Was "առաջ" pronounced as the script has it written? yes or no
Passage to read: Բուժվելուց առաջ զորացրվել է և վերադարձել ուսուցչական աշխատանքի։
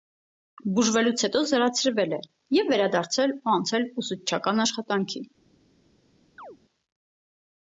no